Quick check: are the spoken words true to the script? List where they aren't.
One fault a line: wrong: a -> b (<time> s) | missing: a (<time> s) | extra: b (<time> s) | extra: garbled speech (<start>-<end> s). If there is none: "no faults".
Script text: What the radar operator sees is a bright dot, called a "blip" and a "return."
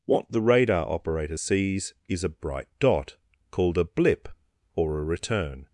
wrong: and -> or (4.7 s)